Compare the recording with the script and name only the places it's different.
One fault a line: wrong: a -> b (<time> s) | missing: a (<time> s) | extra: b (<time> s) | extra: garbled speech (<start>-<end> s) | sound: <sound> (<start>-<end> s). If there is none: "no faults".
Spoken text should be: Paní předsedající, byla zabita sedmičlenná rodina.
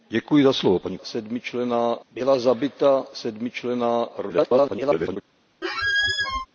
wrong: předsedající -> sedmičlenná (1.0 s)
extra: garbled speech (4.3-5.2 s)
sound: squeak (5.6-6.5 s)